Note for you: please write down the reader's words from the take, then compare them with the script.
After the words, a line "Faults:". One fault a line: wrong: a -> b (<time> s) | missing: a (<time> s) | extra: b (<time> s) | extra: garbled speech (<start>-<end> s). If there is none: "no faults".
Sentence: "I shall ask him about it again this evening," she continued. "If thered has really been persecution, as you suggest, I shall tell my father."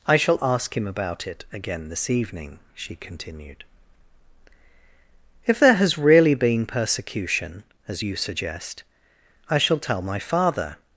"I shall ask him about it again this evening," she continued. "If there has really been persecution, as you suggest, I shall tell my father."
Faults:
wrong: thered -> there (5.6 s)